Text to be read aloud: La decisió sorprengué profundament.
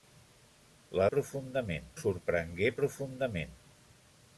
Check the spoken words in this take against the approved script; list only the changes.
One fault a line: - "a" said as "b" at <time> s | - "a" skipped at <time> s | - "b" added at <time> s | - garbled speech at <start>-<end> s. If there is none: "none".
- "decisió" said as "profundament" at 1.2 s